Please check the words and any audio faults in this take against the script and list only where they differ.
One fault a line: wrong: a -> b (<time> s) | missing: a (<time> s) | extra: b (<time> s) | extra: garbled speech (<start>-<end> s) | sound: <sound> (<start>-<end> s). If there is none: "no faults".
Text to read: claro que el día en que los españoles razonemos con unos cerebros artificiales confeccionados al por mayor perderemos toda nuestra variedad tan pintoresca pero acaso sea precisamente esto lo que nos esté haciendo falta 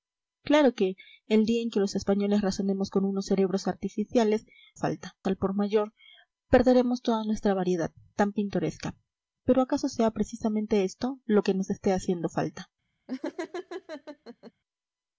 wrong: confeccionados -> falta (4.7 s)
sound: laugh (13.1-14.5 s)